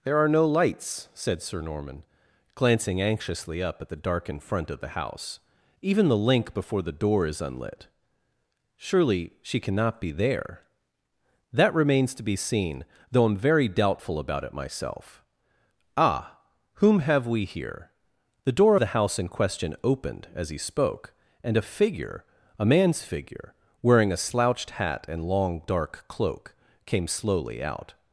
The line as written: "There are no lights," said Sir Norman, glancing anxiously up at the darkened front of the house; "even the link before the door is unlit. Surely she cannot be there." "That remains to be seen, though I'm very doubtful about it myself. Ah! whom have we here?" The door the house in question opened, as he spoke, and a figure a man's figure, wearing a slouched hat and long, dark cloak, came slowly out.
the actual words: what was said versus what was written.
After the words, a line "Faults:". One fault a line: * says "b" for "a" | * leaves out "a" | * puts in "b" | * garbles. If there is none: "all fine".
"There are no lights," said Sir Norman, glancing anxiously up at the darkened front of the house; "even the link before the door is unlit. Surely she cannot be there." "That remains to be seen, though I'm very doubtful about it myself. Ah! whom have we here?" The door the house in question opened, as he spoke, and a figure a man's figure, wearing a slouched hat and long, dark cloak, came slowly out.
Faults:
all fine